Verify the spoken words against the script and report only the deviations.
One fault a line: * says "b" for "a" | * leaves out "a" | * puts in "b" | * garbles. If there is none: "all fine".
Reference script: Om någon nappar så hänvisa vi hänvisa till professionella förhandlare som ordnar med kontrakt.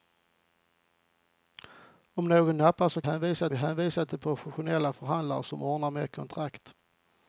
all fine